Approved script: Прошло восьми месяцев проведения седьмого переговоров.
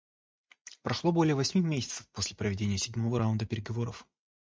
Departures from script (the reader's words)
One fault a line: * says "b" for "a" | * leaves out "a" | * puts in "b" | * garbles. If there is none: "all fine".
* puts in "более"
* puts in "после"
* puts in "раунда"